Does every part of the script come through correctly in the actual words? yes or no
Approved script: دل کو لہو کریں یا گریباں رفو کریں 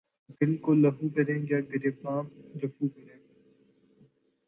yes